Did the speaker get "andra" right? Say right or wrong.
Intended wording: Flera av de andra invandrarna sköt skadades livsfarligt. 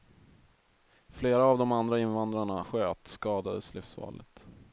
right